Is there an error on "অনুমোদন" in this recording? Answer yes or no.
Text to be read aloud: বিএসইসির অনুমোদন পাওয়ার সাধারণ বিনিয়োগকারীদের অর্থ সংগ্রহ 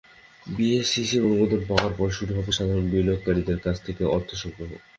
no